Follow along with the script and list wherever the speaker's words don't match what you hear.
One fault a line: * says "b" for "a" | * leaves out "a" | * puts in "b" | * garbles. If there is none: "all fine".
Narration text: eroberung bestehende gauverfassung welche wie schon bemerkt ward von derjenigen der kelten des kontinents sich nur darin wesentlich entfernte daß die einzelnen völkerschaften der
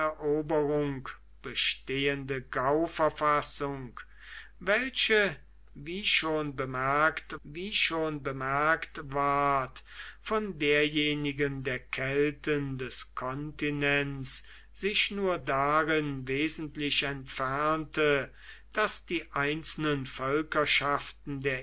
* puts in "wie schon bemerkt"